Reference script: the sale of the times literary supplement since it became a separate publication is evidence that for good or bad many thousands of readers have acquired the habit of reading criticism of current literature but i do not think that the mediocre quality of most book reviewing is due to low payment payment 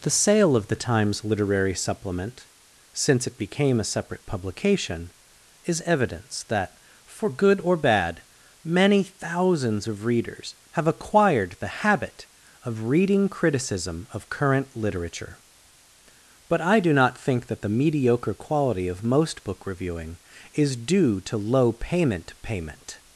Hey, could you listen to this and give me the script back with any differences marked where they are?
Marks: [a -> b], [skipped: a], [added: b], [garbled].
the sale of the times literary supplement since it became a separate publication is evidence that for good or bad many thousands of readers have acquired the habit of reading criticism of current literature but i do not think that the mediocre quality of most book reviewing is due to low payment payment